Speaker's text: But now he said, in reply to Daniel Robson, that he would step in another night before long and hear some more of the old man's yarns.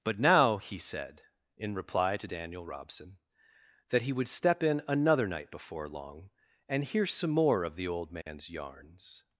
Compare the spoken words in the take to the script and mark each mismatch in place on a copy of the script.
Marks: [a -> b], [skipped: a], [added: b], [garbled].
But now he said, in reply to Daniel Robson, that he would step in another night before long and hear some more of the old man's yarns.